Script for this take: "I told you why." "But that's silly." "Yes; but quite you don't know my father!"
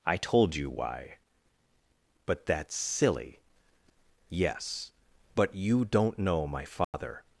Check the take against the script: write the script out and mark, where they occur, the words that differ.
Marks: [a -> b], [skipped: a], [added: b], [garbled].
"I told you why." "But that's silly." "Yes; but [skipped: quite] you don't know my father!"